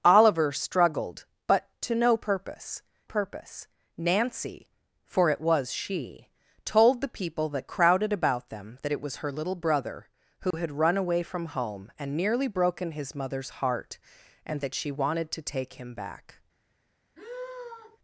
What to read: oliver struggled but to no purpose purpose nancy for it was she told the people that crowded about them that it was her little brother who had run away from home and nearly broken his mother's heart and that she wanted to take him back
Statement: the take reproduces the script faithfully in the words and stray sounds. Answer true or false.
false